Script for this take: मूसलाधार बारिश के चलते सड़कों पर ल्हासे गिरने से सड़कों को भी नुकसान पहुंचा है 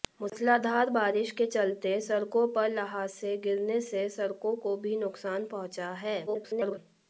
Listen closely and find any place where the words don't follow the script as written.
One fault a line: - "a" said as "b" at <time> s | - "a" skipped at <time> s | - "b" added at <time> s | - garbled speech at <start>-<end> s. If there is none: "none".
- garbled speech at 6.3-6.8 s